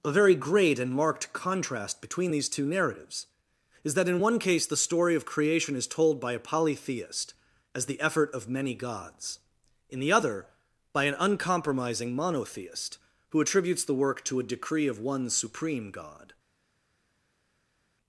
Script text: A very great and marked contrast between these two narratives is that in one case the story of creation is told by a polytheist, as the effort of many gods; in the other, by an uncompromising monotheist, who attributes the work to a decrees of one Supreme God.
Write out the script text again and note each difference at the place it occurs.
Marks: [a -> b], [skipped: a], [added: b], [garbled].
A very great and marked contrast between these two narratives is that in one case the story of creation is told by a polytheist, as the effort of many gods; in the other, by an uncompromising monotheist, who attributes the work to a [decrees -> decree] of one Supreme God.